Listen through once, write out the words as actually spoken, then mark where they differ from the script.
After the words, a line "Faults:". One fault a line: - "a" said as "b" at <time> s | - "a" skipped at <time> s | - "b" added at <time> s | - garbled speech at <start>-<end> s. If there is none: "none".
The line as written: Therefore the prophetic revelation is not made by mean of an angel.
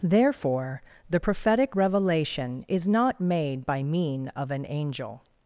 Therefore the prophetic revelation is not made by mean of an angel.
Faults:
none